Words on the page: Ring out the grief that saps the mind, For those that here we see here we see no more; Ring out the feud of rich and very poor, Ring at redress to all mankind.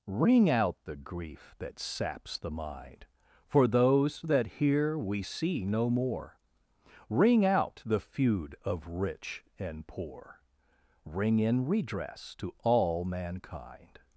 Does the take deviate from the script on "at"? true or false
true